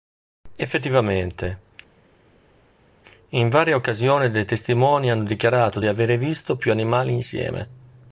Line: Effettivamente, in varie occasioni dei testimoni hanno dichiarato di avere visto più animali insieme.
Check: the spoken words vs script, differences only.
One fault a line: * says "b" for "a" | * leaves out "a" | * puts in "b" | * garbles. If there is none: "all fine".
all fine